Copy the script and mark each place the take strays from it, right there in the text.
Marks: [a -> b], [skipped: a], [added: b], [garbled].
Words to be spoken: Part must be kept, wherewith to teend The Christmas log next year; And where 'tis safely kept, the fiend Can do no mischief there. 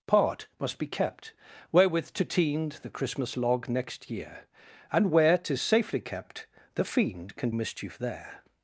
Part must be kept, wherewith to teend The Christmas log next year; And where 'tis safely kept, the fiend Can [skipped: do no] mischief there.